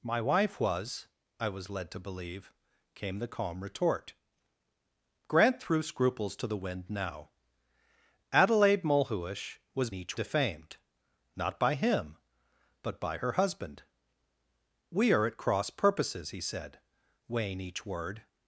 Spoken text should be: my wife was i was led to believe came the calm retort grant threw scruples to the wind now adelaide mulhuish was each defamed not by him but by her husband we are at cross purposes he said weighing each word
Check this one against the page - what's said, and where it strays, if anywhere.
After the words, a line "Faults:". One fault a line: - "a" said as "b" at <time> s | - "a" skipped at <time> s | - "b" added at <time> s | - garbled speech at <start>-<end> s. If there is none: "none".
my wife was i was led to believe came the calm retort grant threw scruples to the wind now adelaide mulhuish was each defamed not by him but by her husband we are at cross purposes he said weighing each word
Faults:
none